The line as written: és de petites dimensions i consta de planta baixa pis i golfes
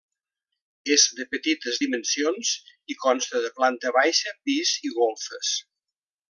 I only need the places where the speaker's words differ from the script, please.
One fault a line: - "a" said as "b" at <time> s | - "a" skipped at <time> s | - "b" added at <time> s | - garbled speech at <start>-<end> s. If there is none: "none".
none